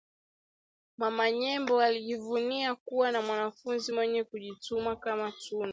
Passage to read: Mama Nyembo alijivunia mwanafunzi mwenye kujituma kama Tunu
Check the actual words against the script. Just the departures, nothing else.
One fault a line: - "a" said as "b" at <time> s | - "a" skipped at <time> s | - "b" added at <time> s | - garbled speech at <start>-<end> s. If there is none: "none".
- "kuwa na" added at 2.8 s